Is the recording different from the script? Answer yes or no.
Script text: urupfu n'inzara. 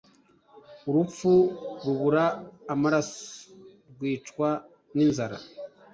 yes